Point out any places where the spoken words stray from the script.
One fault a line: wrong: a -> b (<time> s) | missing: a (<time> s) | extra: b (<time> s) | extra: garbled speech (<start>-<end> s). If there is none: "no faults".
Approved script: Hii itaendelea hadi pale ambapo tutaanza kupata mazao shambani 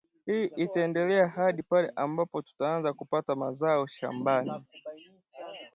no faults